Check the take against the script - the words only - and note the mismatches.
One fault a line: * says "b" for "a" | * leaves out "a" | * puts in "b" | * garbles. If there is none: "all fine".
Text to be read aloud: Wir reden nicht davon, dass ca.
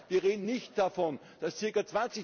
all fine